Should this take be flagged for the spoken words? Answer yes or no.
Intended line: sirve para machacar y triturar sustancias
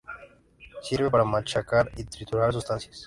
no